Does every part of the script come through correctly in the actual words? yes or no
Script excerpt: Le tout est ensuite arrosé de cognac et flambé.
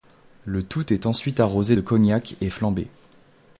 yes